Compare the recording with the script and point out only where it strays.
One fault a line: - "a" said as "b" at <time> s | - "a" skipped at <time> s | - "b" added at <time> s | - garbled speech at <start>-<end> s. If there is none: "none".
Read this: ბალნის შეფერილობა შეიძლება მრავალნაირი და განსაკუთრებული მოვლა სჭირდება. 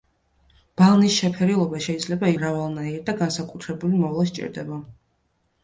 none